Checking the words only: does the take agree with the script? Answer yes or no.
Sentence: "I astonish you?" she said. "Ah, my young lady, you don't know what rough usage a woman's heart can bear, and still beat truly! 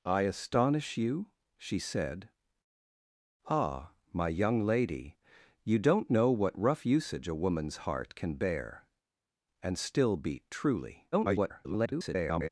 no